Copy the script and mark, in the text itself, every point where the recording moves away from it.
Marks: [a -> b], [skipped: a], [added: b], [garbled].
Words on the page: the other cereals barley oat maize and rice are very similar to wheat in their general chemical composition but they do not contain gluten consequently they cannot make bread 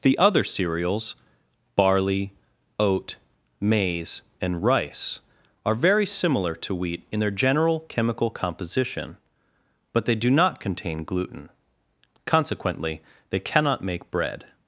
the other cereals barley oat maize and rice are very similar to wheat in their general chemical composition but they do not contain gluten consequently they cannot make bread